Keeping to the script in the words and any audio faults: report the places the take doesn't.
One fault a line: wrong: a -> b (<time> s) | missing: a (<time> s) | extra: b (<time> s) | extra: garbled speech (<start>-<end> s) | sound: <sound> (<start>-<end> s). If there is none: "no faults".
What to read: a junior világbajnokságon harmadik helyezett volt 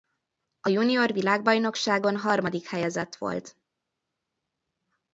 no faults